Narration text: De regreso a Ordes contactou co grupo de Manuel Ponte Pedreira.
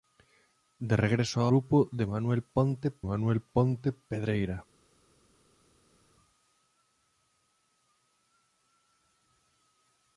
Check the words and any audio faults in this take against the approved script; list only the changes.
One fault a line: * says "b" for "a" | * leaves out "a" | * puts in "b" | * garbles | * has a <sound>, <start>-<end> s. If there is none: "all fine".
* says "Grupo de Manuel Ponte" for "Ordes contactou co grupo de"